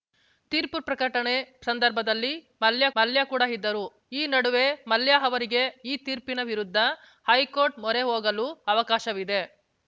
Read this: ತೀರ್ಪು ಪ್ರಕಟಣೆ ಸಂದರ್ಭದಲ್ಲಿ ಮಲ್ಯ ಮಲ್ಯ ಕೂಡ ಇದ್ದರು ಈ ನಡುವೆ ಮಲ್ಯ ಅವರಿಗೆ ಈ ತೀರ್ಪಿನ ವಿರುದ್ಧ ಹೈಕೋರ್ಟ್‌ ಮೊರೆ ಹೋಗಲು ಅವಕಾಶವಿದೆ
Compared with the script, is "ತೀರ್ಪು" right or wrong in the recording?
right